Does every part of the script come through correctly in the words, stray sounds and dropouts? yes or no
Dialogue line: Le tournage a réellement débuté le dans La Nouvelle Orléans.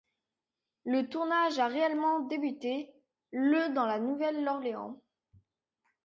yes